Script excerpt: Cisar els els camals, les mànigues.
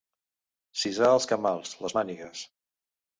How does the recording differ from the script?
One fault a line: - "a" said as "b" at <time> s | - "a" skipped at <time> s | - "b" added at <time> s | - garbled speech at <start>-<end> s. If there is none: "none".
- "els" skipped at 1.3 s